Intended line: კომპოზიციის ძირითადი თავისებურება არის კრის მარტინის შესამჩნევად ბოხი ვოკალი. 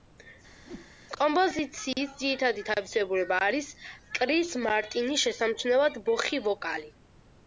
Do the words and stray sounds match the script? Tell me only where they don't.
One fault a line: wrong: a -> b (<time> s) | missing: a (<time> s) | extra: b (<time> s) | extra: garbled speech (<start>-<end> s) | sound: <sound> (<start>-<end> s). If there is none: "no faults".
sound: whoosh (0.6-0.9 s)